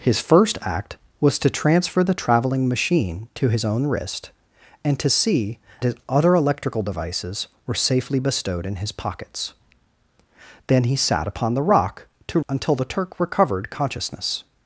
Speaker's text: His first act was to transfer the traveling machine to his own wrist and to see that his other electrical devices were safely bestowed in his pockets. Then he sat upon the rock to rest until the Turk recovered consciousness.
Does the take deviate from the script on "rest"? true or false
true